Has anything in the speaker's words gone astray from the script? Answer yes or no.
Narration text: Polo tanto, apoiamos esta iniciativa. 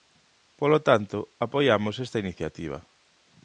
no